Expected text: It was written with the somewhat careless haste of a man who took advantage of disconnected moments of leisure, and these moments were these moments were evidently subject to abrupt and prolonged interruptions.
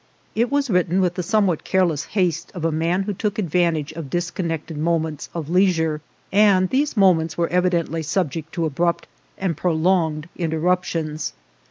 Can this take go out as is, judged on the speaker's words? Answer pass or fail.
fail